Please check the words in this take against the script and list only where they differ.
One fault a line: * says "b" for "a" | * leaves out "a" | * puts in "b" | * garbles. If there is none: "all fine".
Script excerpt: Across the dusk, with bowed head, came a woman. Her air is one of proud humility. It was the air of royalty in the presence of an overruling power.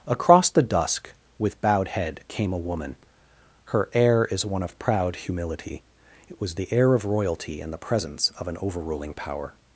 all fine